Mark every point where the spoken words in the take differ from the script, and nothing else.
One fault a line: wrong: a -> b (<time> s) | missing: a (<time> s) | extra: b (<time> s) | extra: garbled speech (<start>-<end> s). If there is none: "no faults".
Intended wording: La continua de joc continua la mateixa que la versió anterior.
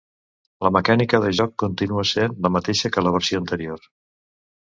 wrong: continua -> mecànica (0.8 s)
extra: sent (2.1 s)